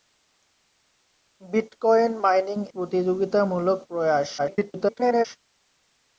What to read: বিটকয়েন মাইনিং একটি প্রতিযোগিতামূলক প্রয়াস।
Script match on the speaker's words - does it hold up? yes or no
no